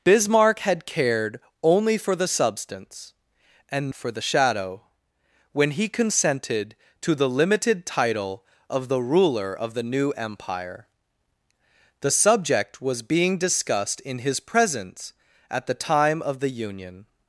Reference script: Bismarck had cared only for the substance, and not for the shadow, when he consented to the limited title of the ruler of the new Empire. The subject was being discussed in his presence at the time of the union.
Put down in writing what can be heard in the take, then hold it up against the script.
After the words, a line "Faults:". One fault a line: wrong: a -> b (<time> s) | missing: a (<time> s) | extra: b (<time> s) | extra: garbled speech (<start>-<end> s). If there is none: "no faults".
Bismarck had cared only for the substance, and for the shadow, when he consented to the limited title of the ruler of the new Empire. The subject was being discussed in his presence at the time of the union.
Faults:
missing: not (3.9 s)